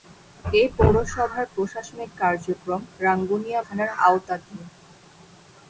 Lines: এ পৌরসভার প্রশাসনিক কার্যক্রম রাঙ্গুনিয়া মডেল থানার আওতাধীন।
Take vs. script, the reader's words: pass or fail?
fail